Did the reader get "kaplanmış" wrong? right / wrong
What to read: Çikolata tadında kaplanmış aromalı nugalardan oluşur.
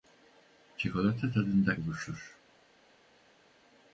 wrong